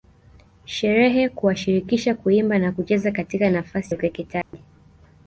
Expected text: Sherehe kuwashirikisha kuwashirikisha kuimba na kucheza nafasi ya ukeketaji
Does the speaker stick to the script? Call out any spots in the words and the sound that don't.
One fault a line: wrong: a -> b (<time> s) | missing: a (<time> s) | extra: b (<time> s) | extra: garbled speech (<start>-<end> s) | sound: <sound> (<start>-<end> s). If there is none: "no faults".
missing: kuwashirikisha (2.1 s)
extra: katika (3.1 s)
sound: dropout (4.4-4.5 s)